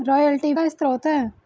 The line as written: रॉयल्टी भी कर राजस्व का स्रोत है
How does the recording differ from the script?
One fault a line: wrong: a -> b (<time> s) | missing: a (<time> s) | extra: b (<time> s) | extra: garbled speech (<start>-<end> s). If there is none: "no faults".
missing: भी कर राजस्व (0.5 s)